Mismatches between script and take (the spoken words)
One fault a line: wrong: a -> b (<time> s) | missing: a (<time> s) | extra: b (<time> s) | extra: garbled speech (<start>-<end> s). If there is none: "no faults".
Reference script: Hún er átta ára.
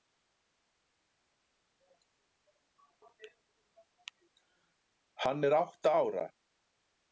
wrong: Hún -> Hann (5.2 s)